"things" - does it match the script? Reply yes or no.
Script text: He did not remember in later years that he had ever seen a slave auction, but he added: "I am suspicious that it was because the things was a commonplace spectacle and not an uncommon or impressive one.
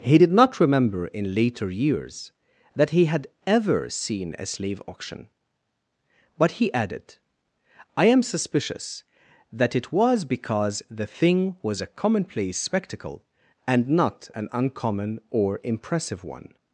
no